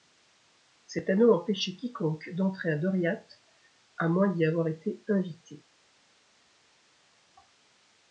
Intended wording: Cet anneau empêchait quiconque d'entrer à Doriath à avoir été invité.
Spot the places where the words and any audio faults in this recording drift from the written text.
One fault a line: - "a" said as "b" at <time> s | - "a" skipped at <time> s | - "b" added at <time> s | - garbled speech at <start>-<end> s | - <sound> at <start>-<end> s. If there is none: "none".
- "moins d'y" added at 4.1 s